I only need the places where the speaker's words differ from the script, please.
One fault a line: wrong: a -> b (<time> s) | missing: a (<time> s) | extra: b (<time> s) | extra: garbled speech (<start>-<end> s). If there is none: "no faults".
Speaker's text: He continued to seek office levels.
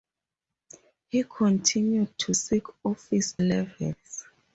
no faults